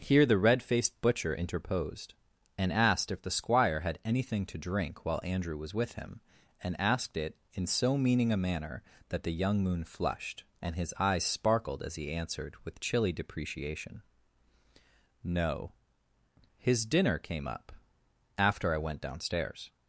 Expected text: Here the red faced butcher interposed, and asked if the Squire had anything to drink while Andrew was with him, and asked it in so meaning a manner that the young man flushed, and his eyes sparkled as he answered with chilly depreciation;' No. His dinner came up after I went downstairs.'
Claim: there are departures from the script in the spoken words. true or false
true